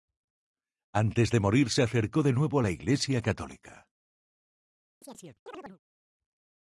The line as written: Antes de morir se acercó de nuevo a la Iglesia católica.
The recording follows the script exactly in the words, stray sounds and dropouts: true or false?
false